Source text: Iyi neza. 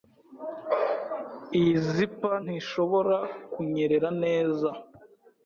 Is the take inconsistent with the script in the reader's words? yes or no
yes